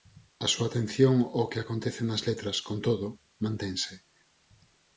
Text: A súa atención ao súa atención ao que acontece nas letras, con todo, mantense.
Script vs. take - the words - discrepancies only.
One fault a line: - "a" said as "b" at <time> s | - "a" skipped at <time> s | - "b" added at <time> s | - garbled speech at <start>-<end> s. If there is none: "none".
- "súa atención ao" skipped at 1.5 s